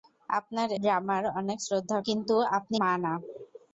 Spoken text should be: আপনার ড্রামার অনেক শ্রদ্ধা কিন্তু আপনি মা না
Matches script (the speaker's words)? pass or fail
pass